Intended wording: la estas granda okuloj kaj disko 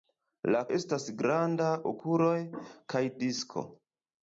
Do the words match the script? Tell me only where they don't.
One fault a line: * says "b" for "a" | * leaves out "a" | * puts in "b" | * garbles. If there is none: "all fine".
all fine